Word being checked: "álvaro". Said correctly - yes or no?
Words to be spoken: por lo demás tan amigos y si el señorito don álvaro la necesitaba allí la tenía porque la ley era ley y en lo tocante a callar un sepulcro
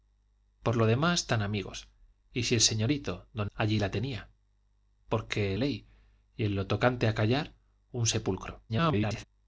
no